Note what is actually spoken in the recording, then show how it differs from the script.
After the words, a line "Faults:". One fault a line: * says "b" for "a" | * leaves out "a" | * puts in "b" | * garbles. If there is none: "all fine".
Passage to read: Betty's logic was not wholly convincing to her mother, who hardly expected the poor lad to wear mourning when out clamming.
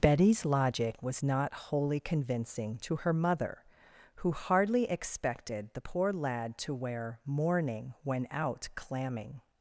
Betty's logic was not wholly convincing to her mother, who hardly expected the poor lad to wear mourning when out clamming.
Faults:
all fine